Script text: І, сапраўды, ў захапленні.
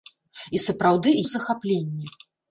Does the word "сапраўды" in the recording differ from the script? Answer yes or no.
no